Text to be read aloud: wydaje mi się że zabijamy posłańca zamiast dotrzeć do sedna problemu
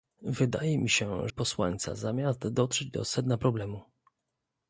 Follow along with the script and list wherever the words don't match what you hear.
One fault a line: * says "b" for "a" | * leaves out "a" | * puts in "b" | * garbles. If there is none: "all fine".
* leaves out "że zabijamy"